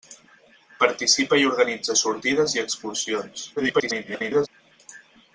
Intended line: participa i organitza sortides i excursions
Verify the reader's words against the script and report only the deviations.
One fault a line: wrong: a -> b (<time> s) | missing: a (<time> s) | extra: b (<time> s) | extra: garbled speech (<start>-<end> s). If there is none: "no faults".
extra: garbled speech (3.6-4.5 s)